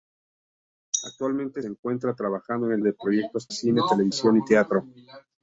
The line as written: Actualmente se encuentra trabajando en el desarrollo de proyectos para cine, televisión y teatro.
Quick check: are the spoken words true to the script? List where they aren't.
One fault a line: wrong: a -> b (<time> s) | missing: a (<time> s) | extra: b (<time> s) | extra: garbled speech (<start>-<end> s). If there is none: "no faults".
missing: se (1.6 s)
missing: desarrollo (2.8 s)
missing: para (3.5 s)